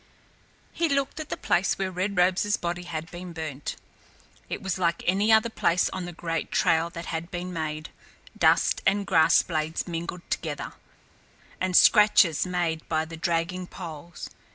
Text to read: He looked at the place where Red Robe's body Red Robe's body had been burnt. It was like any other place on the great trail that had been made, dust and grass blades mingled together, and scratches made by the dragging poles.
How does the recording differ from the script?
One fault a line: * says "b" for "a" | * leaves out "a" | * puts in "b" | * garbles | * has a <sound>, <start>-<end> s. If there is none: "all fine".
* leaves out "Red Robe's body"